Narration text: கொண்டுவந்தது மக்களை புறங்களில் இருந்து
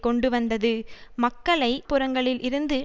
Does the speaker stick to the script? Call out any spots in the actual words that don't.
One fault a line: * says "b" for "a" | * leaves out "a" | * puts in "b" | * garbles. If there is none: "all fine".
all fine